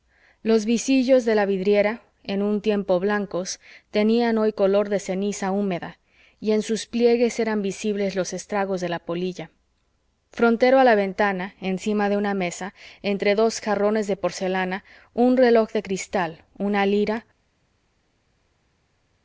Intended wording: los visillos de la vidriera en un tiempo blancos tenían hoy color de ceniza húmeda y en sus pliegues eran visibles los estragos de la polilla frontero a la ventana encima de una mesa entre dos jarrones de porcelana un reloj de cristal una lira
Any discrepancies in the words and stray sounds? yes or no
no